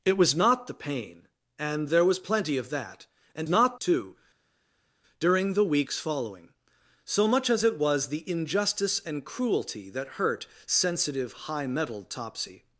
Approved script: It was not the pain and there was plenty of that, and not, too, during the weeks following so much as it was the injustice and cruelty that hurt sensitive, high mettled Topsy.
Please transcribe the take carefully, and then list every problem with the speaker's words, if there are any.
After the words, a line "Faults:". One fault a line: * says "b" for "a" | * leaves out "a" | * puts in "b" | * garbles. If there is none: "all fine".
It was not the pain and there was plenty of that, and not, too, during the weeks following so much as it was the injustice and cruelty that hurt sensitive, high mettled Topsy.
Faults:
all fine